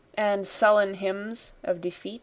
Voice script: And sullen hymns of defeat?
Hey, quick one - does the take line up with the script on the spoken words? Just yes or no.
yes